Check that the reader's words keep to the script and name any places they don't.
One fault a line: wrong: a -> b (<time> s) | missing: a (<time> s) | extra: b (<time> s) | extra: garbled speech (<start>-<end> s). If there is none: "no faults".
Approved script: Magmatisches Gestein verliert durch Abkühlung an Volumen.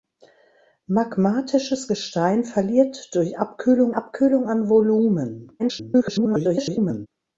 extra: Abkühlung (3.9 s)
extra: garbled speech (5.6-7.1 s)